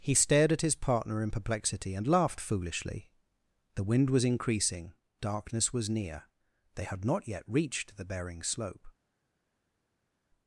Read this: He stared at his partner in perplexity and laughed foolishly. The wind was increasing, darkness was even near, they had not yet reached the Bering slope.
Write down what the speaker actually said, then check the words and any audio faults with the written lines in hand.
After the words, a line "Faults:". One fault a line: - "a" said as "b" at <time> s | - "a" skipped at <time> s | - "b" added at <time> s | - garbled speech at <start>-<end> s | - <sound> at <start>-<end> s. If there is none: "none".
He stared at his partner in perplexity and laughed foolishly. The wind was increasing, darkness was near, they had not yet reached the Bering slope.
Faults:
- "even" skipped at 5.9 s